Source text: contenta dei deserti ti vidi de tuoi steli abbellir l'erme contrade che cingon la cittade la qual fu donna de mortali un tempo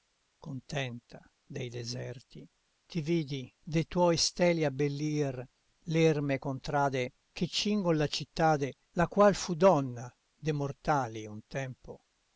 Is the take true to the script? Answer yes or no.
yes